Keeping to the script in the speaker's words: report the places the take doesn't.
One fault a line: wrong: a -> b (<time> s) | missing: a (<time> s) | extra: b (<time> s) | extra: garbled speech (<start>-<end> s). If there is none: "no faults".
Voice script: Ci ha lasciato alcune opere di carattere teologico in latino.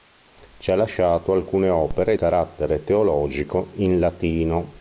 missing: di (2.2 s)